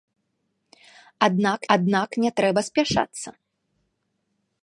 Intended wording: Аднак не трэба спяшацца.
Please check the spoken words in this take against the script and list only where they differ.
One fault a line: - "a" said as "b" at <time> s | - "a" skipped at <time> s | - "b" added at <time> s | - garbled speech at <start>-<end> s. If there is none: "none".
- "аднак" added at 1.8 s